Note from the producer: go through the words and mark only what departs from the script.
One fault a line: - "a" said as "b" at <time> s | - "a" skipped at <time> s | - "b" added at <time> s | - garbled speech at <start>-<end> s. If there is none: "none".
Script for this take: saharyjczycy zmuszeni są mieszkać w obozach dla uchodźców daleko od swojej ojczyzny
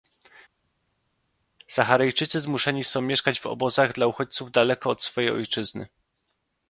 none